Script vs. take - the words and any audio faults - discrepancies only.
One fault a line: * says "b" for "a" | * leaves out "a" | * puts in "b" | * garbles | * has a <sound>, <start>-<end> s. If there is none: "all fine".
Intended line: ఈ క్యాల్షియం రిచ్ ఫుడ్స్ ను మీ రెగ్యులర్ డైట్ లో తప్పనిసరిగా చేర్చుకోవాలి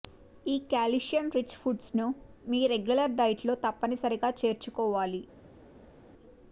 all fine